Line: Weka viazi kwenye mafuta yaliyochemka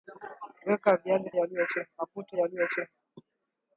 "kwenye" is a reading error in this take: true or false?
true